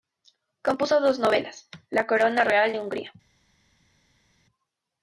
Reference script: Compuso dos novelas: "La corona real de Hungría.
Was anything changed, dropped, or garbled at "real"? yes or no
no